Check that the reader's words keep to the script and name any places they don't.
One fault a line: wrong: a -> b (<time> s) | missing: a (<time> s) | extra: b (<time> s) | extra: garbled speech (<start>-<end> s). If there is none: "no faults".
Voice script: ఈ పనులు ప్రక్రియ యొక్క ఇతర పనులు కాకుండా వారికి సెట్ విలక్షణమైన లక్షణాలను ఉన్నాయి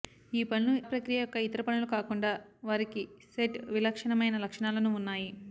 no faults